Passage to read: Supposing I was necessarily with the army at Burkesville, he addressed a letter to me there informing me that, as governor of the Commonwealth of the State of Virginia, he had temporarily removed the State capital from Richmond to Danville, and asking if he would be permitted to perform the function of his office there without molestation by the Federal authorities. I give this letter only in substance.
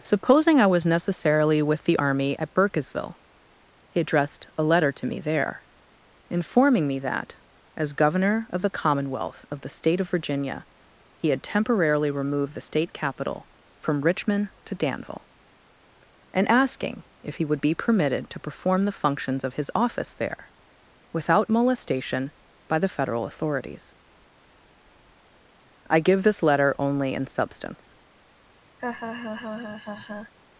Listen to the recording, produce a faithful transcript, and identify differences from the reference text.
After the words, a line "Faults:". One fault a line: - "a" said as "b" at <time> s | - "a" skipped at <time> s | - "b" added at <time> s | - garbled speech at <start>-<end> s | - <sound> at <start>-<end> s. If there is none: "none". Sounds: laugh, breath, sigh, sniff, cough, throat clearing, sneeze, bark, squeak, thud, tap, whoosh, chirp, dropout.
Supposing I was necessarily with the army at Burkesville, he addressed a letter to me there informing me that, as governor of the Commonwealth of the State of Virginia, he had temporarily removed the State capital from Richmond to Danville, and asking if he would be permitted to perform the functions of his office there without molestation by the Federal authorities. I give this letter only in substance.
Faults:
- "function" said as "functions" at 18.9 s
- laugh at 28.8-30.3 s